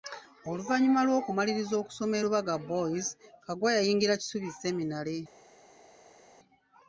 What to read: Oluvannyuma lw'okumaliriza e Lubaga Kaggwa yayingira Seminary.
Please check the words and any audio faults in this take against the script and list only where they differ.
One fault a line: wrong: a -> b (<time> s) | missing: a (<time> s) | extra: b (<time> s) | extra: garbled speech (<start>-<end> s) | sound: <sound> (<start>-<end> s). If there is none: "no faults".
extra: okusoma (1.8 s)
extra: boys (2.7 s)
extra: Kisubi (4.2 s)